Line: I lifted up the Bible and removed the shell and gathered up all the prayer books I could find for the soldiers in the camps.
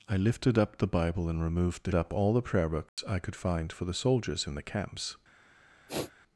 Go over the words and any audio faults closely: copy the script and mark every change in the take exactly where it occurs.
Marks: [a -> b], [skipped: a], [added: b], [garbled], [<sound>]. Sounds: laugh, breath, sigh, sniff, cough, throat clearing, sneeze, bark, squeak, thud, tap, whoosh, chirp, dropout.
I lifted up the Bible and removed the [skipped: shell and gathered] up all the prayer books [dropout] I could find for the soldiers in the camps. [sniff]